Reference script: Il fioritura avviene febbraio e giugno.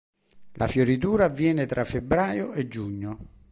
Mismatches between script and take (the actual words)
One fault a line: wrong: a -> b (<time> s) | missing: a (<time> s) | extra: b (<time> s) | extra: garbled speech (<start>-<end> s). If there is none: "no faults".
wrong: Il -> La (0.5 s)
extra: tra (1.7 s)